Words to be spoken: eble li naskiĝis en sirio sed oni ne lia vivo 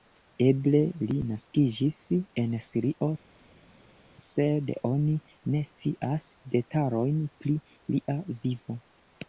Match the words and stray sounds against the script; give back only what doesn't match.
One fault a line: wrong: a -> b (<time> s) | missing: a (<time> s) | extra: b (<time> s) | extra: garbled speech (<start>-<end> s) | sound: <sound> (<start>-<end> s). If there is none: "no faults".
extra: scias detalojn pri (5.7 s)